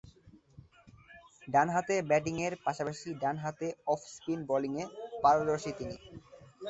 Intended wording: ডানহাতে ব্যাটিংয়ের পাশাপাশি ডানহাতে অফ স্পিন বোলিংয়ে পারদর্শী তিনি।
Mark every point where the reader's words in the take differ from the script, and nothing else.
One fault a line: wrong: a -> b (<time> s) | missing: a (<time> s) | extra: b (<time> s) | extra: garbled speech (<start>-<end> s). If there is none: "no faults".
no faults